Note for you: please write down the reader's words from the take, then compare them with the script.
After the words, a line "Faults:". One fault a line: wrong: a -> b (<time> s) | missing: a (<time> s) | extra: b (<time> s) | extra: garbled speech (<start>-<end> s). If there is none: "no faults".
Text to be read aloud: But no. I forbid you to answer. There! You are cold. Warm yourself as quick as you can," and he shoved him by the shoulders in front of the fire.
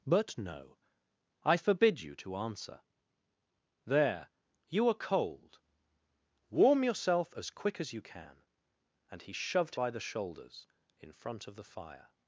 But no. I forbid you to answer. There! You are cold. Warm yourself as quick as you can," and he shoved by the shoulders in front of the fire.
Faults:
missing: him (9.8 s)